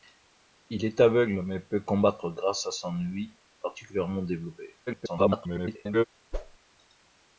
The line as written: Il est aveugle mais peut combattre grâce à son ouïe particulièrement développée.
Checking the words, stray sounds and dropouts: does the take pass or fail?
fail